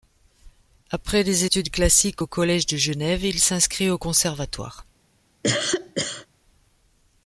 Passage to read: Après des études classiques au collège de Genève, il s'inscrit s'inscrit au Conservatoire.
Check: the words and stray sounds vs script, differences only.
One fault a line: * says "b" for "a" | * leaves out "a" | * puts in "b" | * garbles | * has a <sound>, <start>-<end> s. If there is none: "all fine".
* leaves out "s'inscrit"
* has a cough, 5.4-6.3 s